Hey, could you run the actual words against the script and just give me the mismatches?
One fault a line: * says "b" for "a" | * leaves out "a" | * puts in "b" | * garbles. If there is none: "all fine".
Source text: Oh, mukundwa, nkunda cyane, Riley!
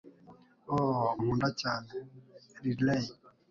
* leaves out "mukundwa"